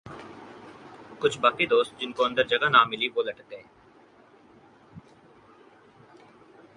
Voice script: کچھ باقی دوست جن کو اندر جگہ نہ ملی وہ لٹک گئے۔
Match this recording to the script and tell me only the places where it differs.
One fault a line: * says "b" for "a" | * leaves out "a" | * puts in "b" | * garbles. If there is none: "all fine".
all fine